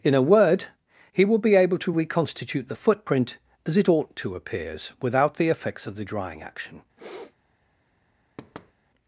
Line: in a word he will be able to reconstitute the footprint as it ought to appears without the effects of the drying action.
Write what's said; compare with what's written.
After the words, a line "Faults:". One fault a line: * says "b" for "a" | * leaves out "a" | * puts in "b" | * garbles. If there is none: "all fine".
in a word he will be able to reconstitute the footprint as it ought to appears without the effects of the drying action.
Faults:
all fine